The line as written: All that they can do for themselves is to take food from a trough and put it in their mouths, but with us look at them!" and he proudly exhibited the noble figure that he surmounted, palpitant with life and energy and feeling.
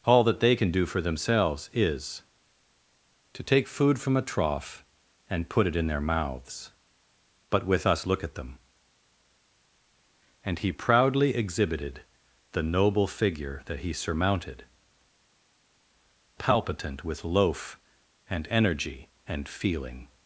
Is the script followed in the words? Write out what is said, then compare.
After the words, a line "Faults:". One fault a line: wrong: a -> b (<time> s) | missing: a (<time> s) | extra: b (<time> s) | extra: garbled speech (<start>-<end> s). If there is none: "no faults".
All that they can do for themselves is to take food from a trough and put it in their mouths, but with us look at them!" and he proudly exhibited the noble figure that he surmounted, palpitant with loaf and energy and feeling.
Faults:
wrong: life -> loaf (17.2 s)